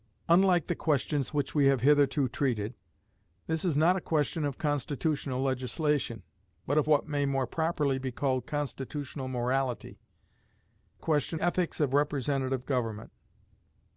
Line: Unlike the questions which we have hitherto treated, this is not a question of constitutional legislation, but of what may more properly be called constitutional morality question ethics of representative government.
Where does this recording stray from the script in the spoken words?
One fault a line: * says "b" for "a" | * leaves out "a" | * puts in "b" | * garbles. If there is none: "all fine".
all fine